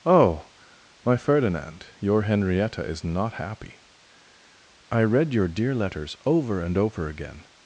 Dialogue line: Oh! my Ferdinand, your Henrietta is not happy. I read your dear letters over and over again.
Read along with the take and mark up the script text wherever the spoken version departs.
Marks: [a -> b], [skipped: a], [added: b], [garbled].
Oh! my Ferdinand, your Henrietta is not happy. I read your dear letters over and over again.